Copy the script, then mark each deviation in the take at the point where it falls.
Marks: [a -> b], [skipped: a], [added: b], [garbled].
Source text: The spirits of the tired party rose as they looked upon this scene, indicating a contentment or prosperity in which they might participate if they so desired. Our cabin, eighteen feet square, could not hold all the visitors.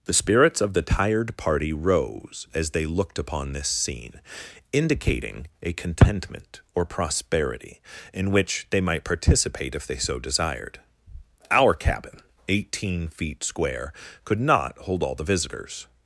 The spirits of the tired party rose as they looked upon this scene, indicating a contentment or prosperity in which they might participate if they so desired. Our cabin, eighteen feet square, could not hold all the visitors.